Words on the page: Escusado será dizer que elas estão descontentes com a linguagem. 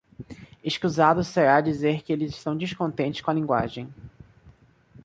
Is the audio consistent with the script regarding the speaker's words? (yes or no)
no